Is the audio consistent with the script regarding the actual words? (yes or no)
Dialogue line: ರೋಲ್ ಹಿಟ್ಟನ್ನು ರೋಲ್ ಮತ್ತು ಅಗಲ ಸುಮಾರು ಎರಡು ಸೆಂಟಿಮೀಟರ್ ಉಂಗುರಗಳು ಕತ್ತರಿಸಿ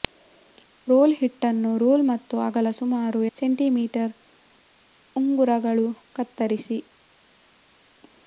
no